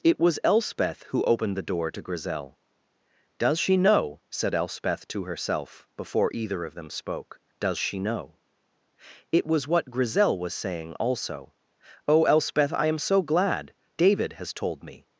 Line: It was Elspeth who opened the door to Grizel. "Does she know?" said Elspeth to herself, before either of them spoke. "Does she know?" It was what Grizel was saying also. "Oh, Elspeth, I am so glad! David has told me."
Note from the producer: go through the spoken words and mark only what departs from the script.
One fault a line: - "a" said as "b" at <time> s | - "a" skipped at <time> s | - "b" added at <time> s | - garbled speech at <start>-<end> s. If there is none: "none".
none